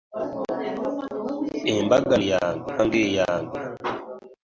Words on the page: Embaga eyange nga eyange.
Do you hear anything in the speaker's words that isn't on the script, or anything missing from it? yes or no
no